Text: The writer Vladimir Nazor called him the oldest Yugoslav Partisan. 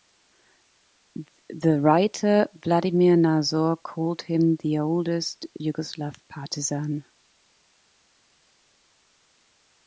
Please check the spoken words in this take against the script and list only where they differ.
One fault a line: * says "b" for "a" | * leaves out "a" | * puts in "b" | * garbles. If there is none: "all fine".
all fine